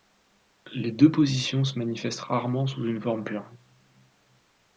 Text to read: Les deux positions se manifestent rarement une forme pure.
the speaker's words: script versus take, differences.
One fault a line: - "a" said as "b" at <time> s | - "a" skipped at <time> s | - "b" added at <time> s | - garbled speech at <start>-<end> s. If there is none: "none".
- "sous" added at 2.7 s